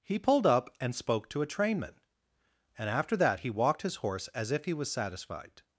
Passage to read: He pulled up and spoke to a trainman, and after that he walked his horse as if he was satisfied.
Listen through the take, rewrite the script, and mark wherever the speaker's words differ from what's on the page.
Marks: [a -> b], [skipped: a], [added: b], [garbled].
He pulled up and spoke to a trainman, and after that he walked his horse as if he was satisfied.